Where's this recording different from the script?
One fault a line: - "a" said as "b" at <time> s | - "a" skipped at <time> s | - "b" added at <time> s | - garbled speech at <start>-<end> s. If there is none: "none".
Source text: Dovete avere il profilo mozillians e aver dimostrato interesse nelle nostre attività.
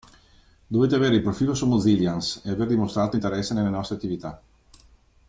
- "su" added at 1.5 s